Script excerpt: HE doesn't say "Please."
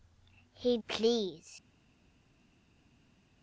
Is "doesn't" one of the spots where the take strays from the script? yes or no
yes